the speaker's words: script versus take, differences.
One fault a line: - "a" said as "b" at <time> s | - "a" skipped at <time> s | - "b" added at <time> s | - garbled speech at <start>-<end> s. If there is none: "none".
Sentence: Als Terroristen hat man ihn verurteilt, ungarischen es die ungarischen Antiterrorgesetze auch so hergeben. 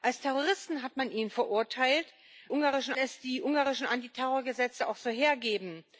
none